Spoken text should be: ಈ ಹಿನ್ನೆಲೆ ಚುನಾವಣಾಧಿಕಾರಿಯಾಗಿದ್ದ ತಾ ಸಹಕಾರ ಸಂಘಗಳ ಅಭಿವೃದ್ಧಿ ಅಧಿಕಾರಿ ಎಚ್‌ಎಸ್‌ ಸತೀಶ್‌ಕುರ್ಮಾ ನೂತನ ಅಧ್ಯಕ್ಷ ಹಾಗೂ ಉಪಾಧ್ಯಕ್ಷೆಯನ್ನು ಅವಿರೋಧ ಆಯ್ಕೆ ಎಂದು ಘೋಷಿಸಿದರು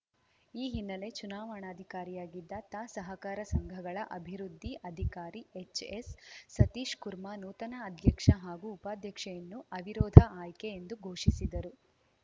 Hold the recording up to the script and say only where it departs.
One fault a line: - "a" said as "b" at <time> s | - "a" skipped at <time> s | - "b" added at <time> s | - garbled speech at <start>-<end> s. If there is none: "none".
none